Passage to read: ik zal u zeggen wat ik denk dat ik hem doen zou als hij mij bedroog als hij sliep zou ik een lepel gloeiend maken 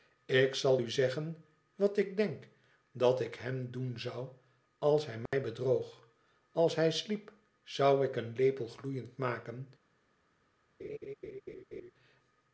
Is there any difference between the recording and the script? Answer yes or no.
no